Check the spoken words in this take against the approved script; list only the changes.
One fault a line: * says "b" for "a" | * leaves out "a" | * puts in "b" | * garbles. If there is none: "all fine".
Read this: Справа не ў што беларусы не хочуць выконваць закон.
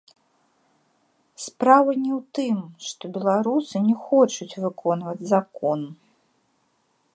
* puts in "тым"